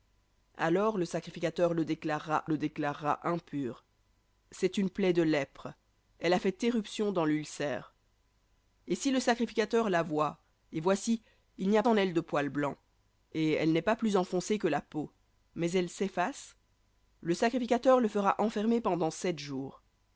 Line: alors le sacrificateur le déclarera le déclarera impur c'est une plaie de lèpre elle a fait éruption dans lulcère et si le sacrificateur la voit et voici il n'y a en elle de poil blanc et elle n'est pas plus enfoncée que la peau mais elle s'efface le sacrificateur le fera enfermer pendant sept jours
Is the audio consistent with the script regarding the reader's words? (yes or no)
yes